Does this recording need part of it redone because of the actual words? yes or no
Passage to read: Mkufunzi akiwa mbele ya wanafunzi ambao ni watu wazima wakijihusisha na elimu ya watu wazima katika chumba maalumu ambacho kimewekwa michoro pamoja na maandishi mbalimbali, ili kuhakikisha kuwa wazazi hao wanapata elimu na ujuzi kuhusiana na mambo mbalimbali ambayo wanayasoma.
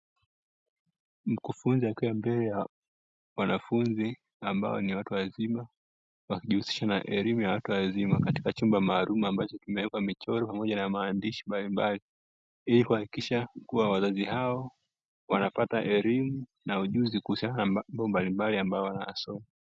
no